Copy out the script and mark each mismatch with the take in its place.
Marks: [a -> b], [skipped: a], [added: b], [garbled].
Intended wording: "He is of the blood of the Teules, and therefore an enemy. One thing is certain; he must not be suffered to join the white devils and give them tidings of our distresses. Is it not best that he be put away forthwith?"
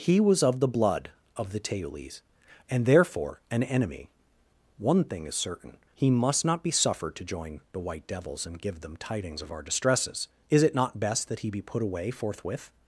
"He [is -> was] of the blood of the Teules, and therefore an enemy. One thing is certain; he must not be suffered to join the white devils and give them tidings of our distresses. Is it not best that he be put away forthwith?"